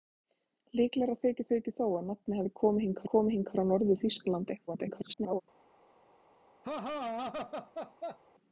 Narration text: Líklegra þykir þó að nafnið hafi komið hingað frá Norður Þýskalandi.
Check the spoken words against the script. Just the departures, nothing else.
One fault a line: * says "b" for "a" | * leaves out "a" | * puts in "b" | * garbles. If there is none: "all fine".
* puts in "þykir"
* puts in "komið hingað"
* garbles